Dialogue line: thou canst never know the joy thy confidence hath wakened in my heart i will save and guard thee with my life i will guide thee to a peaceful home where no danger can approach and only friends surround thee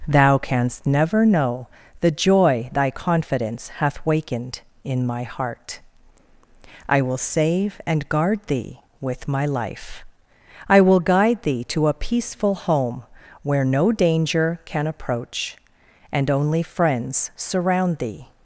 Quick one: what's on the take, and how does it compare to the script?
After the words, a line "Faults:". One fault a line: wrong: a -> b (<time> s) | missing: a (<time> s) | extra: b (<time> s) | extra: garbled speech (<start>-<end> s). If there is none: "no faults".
thou canst never know the joy thy confidence hath wakened in my heart i will save and guard thee with my life i will guide thee to a peaceful home where no danger can approach and only friends surround thee
Faults:
no faults